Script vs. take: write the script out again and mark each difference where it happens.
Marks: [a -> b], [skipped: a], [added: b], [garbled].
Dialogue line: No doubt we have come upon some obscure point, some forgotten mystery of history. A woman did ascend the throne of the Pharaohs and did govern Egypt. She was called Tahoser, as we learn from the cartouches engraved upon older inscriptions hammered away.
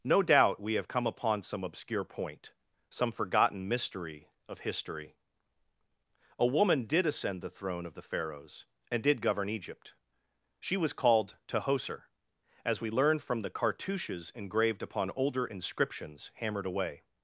No doubt we have come upon some obscure point, some forgotten mystery of history. A woman did ascend the throne of the Pharaohs and did govern Egypt. She was called Tahoser, as we learn from the cartouches engraved upon older inscriptions hammered away.